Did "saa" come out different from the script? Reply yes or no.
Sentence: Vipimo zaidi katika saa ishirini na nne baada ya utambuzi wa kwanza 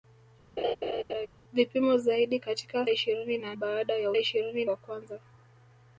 yes